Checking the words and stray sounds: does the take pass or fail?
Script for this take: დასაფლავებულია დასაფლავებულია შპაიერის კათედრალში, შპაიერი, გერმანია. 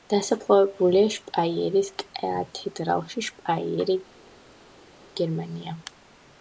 fail